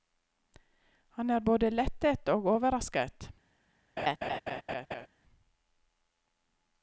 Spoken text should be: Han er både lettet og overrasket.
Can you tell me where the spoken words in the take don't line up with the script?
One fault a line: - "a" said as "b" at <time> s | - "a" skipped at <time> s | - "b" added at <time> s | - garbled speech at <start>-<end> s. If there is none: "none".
none